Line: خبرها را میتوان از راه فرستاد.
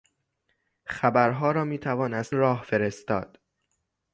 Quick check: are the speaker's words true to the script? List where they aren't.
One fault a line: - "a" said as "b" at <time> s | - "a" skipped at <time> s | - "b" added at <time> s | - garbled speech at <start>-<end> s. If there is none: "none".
none